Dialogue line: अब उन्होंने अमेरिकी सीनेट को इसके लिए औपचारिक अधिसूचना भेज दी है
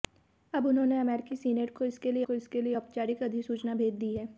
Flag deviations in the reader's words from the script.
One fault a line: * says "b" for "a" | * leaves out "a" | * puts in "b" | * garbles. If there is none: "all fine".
* puts in "को इसके लिए"